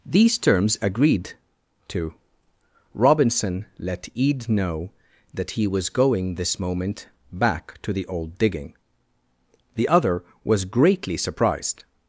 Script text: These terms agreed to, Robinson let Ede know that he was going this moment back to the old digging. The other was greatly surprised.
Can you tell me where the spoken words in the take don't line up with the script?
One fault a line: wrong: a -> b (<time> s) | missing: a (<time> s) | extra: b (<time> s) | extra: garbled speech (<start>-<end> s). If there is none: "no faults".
no faults